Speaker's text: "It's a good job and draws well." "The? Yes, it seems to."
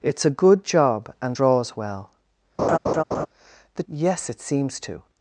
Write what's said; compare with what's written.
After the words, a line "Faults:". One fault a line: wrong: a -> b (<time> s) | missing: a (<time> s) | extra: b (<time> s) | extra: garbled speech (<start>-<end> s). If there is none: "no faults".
"It's a good job and draws well." "The? Yes, it seems to."
Faults:
no faults